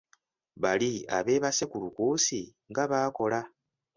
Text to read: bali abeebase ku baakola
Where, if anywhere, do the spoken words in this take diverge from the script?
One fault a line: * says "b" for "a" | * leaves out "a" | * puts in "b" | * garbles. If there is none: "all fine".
* puts in "lukuusi nga"